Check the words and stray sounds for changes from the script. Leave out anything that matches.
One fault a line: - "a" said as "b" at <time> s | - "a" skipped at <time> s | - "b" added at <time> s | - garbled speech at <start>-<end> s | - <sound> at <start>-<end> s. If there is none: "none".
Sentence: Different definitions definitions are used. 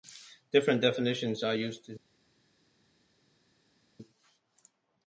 - "definitions" skipped at 1.4 s